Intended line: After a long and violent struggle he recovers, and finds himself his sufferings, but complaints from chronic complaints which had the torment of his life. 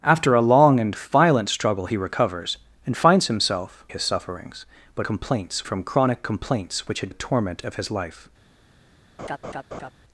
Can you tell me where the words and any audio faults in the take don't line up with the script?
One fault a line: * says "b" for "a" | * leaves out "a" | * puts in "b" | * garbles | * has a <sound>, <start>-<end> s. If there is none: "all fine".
* has a laugh, 9.2-9.9 s